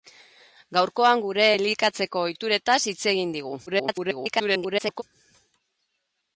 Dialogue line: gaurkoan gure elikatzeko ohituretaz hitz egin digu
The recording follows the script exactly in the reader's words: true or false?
false